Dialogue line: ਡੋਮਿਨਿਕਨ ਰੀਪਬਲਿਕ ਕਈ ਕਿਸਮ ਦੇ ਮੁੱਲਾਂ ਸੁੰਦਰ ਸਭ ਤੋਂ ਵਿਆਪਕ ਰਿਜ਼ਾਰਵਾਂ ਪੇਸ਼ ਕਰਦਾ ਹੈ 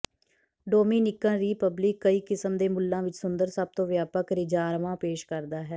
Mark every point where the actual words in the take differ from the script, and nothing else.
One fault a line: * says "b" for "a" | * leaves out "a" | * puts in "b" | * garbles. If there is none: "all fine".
* puts in "ਵਿੱਚ"